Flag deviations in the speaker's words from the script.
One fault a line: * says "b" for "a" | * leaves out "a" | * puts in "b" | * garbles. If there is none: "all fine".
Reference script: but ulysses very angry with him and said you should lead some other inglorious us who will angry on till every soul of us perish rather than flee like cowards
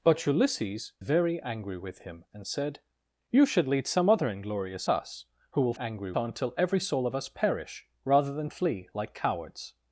all fine